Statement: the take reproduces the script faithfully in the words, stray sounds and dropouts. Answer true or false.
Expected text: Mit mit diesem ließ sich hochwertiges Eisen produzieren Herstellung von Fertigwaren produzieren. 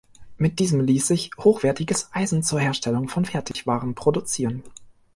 false